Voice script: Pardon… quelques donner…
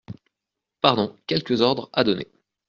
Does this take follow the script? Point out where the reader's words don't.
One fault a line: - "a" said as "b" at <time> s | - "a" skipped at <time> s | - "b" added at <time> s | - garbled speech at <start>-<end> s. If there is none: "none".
- "ordres à" added at 1.6 s